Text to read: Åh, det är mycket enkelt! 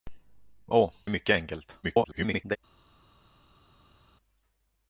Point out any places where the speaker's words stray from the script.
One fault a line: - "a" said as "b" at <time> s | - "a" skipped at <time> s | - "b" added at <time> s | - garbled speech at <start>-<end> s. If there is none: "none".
- "det" skipped at 0.9 s
- garbled speech at 1.8-2.6 s